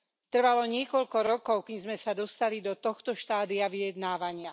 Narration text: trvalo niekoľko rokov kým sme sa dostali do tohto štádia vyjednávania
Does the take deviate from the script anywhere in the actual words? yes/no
no